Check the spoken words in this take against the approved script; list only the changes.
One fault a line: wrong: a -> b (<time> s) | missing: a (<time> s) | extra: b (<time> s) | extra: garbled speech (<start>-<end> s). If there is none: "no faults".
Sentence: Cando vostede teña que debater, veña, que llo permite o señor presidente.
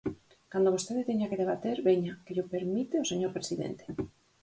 no faults